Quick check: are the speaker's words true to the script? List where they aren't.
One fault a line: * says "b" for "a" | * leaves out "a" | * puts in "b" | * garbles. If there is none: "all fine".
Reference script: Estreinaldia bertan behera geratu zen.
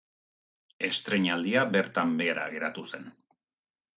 all fine